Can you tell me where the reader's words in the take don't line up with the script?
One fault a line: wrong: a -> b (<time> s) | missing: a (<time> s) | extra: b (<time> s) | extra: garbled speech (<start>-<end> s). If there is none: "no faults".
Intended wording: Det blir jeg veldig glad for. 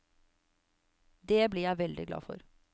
no faults